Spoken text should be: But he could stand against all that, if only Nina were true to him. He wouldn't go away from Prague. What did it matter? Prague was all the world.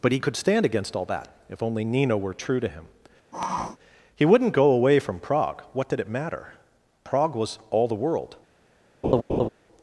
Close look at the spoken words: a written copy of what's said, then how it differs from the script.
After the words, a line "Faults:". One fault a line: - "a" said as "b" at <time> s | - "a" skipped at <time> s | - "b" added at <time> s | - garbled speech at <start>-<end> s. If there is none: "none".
But he could stand against all that, if only Nina were true to him. He wouldn't go away from Prague. What did it matter? Prague was all the world.
Faults:
none